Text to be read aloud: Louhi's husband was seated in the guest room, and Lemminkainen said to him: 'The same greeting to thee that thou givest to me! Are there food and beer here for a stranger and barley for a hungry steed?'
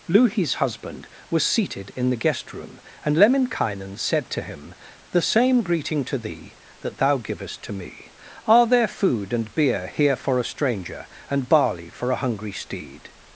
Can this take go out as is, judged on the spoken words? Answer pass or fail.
pass